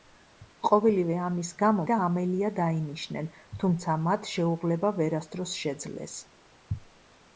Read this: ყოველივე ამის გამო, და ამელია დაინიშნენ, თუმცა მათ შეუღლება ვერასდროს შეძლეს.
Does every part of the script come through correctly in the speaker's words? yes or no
yes